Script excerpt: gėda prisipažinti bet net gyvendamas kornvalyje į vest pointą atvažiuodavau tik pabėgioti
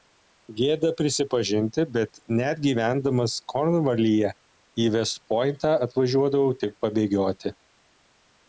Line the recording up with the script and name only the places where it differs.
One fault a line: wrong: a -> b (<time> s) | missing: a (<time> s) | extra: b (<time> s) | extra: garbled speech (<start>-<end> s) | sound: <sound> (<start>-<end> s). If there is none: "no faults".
no faults